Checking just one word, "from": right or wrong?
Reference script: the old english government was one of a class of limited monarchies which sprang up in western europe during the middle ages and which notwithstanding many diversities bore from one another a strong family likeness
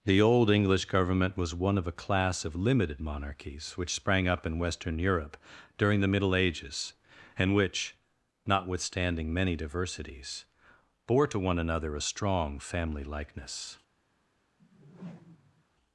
wrong